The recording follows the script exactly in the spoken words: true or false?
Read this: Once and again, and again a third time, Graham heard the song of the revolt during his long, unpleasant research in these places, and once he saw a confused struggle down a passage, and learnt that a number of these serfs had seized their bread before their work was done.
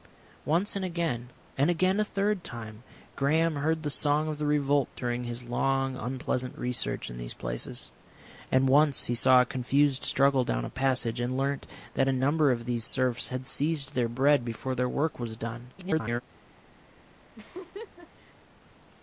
false